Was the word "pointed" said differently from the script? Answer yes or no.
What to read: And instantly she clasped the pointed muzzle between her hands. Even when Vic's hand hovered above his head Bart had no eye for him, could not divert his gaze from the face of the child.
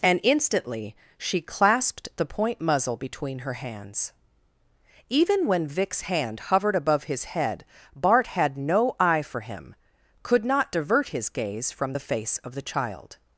yes